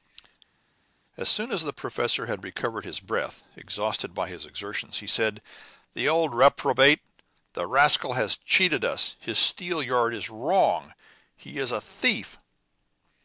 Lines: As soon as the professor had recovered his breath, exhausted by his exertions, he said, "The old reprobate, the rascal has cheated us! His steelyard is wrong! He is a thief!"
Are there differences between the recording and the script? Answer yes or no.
no